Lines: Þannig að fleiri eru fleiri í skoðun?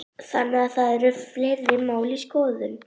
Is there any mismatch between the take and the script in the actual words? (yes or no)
yes